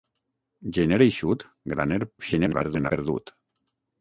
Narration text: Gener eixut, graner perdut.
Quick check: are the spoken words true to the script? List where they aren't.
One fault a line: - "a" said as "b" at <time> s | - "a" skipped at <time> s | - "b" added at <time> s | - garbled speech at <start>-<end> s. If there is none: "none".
- garbled speech at 2.2-2.9 s